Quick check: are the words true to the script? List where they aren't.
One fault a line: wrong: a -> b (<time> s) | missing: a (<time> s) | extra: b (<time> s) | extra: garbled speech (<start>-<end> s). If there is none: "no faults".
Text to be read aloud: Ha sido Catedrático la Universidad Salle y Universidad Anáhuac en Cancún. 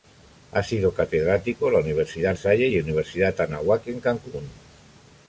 no faults